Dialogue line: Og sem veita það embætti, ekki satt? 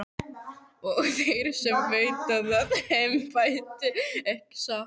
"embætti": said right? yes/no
yes